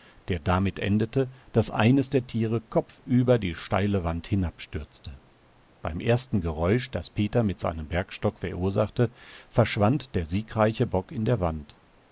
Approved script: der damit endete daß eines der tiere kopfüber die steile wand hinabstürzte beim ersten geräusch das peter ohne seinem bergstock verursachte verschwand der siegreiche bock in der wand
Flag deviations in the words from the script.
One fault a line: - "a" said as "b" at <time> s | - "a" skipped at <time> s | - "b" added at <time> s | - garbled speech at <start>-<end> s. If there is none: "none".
- "ohne" said as "mit" at 7.4 s